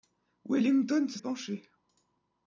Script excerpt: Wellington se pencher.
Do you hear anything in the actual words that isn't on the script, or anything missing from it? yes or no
no